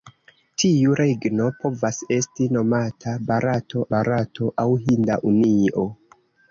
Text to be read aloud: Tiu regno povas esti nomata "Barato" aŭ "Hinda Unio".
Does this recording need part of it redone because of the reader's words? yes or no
yes